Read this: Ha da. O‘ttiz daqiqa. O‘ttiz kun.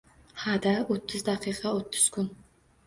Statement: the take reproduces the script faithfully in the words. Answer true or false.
true